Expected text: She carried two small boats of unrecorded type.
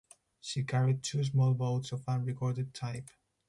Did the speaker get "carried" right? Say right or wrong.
right